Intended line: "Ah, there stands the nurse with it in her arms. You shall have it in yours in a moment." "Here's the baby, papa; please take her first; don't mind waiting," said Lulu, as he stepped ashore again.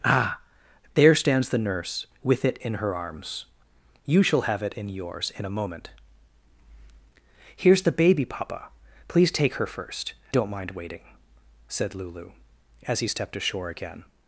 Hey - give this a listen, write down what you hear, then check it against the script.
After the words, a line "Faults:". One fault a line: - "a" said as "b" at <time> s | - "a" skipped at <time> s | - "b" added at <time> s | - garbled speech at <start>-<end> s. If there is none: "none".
"Ah, there stands the nurse with it in her arms. You shall have it in yours in a moment." "Here's the baby, papa; please take her first; don't mind waiting," said Lulu, as he stepped ashore again.
Faults:
none